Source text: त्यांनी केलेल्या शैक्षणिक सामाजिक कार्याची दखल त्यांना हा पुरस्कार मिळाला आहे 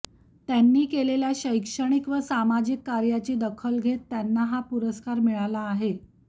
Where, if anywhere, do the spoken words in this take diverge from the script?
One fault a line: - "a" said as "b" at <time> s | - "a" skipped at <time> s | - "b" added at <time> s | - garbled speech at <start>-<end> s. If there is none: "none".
- "व" added at 2.1 s
- "घेत" added at 3.8 s